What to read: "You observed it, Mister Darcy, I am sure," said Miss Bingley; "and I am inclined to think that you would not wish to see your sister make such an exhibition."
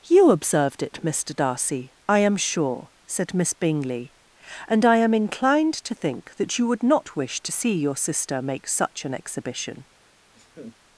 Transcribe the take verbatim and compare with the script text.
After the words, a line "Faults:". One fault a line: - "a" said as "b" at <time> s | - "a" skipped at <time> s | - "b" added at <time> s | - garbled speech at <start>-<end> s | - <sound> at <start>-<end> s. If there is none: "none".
"You observed it, Mister Darcy, I am sure," said Miss Bingley; "and I am inclined to think that you would not wish to see your sister make such an exhibition."
Faults:
- laugh at 10.3-10.8 s